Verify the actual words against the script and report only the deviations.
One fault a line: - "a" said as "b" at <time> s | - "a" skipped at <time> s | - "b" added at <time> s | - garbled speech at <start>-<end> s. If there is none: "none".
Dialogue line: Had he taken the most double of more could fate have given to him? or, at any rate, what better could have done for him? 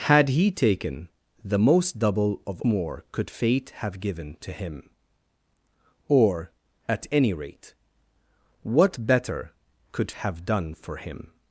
none